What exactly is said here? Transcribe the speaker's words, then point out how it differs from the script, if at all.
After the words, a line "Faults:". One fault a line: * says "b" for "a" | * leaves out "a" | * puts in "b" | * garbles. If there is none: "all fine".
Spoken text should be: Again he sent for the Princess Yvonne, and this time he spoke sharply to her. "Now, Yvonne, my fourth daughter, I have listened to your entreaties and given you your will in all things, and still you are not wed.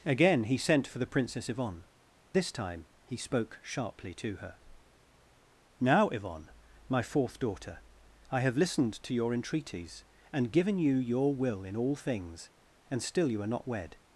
Again he sent for the Princess Yvonne, this time he spoke sharply to her. "Now, Yvonne, my fourth daughter, I have listened to your entreaties and given you your will in all things, and still you are not wed.
Faults:
* leaves out "and"